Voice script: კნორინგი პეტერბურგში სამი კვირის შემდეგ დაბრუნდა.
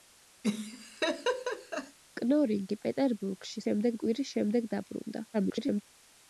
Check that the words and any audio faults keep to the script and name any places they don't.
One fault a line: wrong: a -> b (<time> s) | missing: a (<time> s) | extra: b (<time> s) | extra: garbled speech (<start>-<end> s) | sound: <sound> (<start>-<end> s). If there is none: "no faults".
sound: laugh (0.4-2.0 s)
wrong: სამი -> შემდეგ (3.7 s)
extra: garbled speech (5.3-5.8 s)